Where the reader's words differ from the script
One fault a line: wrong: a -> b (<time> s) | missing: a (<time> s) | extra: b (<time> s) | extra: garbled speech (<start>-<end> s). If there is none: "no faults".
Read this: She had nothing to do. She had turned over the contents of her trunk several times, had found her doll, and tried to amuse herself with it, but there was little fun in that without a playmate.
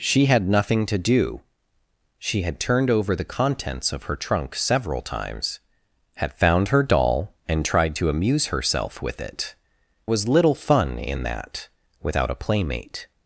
missing: but there (9.5 s)